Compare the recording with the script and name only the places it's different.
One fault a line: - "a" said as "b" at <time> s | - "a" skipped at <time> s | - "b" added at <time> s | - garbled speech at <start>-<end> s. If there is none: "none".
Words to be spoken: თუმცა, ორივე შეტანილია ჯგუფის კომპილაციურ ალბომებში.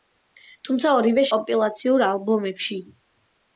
- "შეტანილია ჯგუფის" skipped at 1.2 s